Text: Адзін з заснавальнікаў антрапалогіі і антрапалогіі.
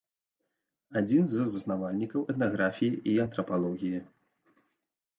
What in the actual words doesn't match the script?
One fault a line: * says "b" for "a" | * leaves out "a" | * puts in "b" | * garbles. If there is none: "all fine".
* says "этнаграфіі" for "антрапалогіі"